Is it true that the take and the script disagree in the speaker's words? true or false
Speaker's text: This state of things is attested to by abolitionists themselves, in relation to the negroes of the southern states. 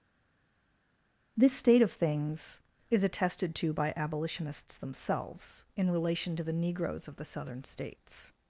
false